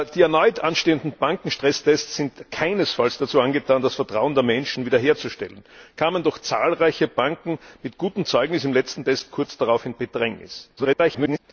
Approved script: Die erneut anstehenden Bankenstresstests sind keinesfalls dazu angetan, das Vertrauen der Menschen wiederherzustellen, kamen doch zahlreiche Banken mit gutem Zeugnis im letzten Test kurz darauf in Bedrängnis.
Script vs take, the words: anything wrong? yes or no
yes